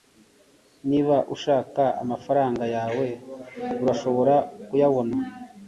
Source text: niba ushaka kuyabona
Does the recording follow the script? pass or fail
fail